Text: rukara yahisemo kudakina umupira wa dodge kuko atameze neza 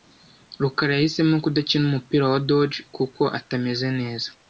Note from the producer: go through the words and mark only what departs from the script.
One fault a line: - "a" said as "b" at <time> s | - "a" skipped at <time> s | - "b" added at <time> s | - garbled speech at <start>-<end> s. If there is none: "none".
none